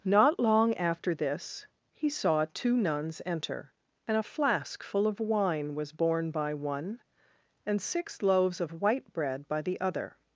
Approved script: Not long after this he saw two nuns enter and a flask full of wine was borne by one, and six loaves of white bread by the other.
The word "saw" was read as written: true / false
true